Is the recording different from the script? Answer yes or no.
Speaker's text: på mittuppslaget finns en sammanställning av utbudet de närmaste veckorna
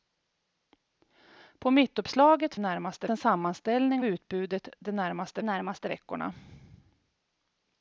yes